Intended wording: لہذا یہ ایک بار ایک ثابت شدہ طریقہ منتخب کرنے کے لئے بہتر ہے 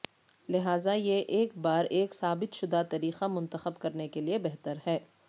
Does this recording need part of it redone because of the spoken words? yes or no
no